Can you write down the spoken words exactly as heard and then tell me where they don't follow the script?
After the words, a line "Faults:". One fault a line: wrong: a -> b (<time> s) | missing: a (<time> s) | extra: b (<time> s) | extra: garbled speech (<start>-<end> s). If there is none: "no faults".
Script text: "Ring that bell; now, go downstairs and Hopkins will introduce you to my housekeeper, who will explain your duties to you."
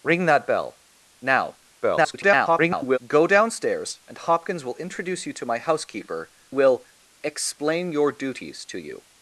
"Ring that bell; now, [garbled] go downstairs and Hopkins will introduce you to my housekeeper, will explain your duties to you."
Faults:
extra: garbled speech (1.8-3.0 s)
missing: who (6.3 s)